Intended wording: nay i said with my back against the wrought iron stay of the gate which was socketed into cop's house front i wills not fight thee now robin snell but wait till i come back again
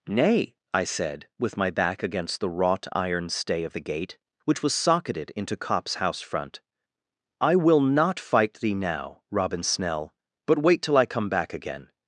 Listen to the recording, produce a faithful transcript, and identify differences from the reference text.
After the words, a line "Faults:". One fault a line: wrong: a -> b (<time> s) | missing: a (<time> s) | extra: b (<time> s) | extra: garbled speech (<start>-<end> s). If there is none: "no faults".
nay i said with my back against the wrought iron stay of the gate which was socketed into cop's house front i will not fight thee now robin snell but wait till i come back again
Faults:
wrong: wills -> will (7.6 s)